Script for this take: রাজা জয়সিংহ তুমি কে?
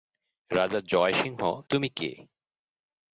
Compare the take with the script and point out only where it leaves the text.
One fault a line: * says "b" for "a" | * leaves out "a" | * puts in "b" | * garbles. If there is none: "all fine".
all fine